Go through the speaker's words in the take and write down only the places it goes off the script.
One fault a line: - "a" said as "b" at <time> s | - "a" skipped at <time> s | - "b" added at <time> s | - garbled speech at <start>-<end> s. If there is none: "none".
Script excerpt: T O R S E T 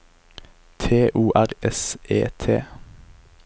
none